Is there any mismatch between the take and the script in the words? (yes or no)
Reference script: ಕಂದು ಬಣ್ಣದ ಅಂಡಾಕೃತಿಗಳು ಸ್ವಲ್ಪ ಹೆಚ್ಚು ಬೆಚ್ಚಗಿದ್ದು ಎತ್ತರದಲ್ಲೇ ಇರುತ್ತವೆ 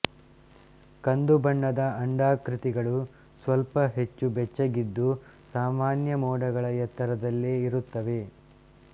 yes